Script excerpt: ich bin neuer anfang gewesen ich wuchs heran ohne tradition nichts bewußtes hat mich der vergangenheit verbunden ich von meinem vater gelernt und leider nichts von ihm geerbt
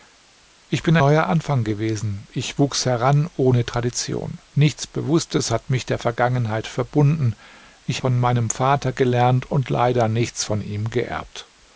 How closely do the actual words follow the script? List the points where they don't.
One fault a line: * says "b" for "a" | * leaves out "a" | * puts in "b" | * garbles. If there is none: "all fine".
all fine